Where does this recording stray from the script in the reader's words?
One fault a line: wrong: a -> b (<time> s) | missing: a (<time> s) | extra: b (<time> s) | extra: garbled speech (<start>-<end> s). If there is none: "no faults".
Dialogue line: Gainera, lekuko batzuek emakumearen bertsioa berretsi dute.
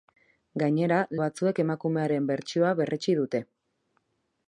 missing: lekuko (1.0 s)